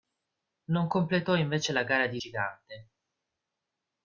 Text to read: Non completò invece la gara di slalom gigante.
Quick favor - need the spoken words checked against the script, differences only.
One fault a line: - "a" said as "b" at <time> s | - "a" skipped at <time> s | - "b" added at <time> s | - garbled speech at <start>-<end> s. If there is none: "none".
- "slalom" skipped at 2.2 s